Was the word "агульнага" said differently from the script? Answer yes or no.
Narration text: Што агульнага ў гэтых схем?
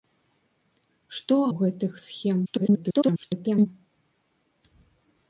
yes